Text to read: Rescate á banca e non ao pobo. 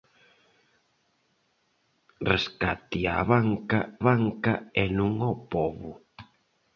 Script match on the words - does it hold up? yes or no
no